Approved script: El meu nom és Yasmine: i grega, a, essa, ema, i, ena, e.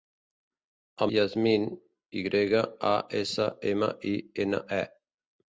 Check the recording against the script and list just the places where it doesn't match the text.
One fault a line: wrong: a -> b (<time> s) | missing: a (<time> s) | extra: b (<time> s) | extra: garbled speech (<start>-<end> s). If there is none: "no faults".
missing: meu nom és (1.1 s)